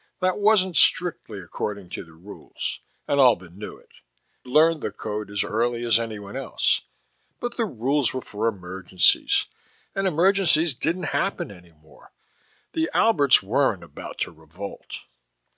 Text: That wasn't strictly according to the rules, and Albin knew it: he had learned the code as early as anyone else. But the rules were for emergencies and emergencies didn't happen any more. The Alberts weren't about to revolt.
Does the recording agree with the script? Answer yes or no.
no